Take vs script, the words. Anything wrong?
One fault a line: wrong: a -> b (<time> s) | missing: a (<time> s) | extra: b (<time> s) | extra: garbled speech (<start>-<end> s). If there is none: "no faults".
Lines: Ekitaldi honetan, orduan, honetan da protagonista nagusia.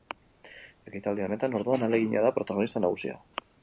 wrong: honetan -> ahalegina (1.9 s)